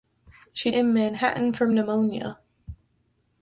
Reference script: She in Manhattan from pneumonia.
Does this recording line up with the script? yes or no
yes